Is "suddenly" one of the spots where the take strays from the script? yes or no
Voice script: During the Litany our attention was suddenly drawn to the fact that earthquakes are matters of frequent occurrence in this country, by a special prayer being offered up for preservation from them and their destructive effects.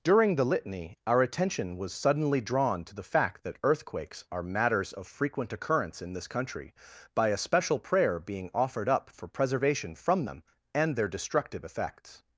no